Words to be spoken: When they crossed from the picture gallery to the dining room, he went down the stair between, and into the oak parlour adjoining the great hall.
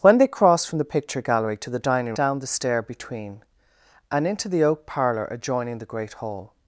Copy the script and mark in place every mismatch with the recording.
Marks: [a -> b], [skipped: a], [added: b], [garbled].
When they crossed from the picture gallery to the dining [skipped: room, he went] down the stair between, and into the oak parlour adjoining the great hall.